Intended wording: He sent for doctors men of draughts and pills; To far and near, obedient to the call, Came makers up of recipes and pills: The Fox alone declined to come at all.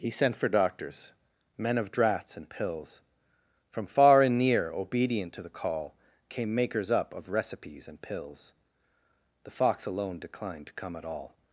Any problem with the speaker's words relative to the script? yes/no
yes